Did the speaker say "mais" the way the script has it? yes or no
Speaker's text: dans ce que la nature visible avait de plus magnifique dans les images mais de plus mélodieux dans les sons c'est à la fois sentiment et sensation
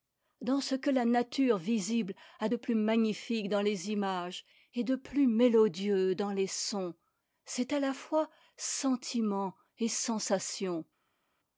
no